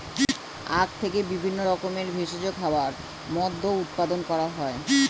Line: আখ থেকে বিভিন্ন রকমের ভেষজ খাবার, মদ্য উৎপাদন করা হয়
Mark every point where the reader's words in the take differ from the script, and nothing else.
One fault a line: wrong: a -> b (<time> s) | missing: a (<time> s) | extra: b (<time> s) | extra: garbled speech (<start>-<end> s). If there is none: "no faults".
no faults